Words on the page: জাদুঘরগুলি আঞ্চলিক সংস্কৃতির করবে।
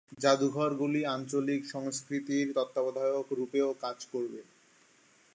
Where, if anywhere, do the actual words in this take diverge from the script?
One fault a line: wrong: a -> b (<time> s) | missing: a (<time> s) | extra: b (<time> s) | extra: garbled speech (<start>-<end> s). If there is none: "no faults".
extra: তত্ত্বাবধায়ক রূপেও কাজ (2.5 s)